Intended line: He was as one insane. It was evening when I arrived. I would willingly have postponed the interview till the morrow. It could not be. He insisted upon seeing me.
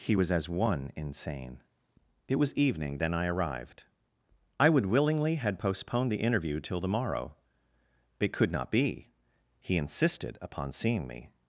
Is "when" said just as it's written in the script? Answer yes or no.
no